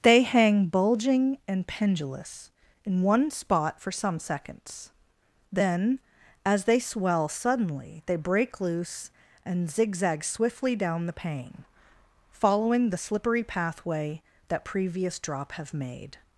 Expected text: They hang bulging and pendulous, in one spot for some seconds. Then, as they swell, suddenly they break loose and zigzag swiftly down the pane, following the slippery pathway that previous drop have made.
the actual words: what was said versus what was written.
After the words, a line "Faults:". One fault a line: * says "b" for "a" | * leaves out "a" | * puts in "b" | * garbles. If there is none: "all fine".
They hang bulging and pendulous, in one spot for some seconds. Then, as they swell, suddenly they break loose and zigzag swiftly down the pane, following the slippery pathway that previous drop have made.
Faults:
all fine